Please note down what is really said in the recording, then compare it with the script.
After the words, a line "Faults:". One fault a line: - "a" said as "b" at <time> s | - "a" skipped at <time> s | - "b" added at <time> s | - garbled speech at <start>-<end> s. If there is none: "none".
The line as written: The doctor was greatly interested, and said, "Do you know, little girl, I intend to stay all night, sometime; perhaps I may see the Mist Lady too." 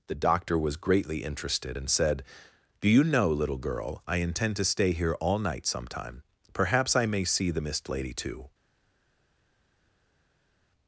The doctor was greatly interested, and said, "Do you know, little girl, I intend to stay here all night, sometime; perhaps I may see the Mist Lady too."
Faults:
- "here" added at 4.9 s